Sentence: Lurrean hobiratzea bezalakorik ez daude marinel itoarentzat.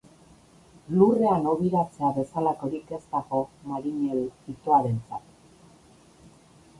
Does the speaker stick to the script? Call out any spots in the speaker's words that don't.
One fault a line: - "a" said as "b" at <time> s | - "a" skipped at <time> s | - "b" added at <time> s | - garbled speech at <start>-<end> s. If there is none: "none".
- "daude" said as "dago" at 3.1 s